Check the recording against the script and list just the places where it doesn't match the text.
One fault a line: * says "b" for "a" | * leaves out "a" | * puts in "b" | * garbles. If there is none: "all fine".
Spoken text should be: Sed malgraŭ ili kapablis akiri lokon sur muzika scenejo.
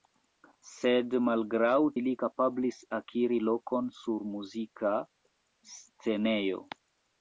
all fine